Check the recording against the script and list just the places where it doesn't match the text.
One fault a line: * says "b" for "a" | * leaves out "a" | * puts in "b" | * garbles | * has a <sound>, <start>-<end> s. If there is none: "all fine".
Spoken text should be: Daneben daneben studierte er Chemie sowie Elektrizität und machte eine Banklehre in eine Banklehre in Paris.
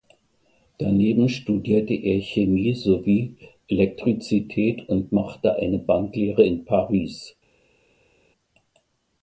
* leaves out "daneben"
* leaves out "eine Banklehre in"